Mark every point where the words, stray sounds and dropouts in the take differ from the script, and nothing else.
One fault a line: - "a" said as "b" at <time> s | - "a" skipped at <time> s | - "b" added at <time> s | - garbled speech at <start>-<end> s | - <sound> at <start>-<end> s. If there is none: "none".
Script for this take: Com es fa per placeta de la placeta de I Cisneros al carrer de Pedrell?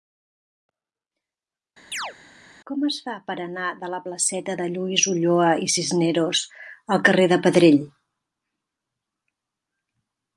- chirp at 1.9-2.1 s
- "placeta" said as "anar" at 3.5 s
- "Lluís Ulloa" added at 4.7 s